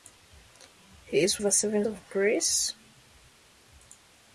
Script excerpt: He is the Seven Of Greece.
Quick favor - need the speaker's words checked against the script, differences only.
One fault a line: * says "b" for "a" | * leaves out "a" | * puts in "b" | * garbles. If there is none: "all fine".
all fine